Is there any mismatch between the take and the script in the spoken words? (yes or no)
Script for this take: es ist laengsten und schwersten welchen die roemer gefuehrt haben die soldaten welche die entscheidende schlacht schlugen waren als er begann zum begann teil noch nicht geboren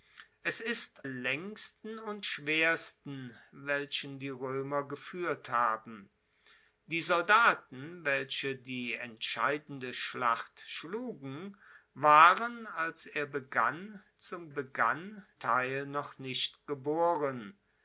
no